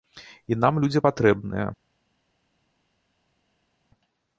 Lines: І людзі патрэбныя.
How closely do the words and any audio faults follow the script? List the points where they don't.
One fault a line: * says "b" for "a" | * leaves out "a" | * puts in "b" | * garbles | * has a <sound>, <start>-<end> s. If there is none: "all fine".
* puts in "нам"